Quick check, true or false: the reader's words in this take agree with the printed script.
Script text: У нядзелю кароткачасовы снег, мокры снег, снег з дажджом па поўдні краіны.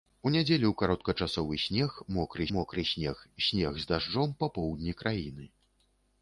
false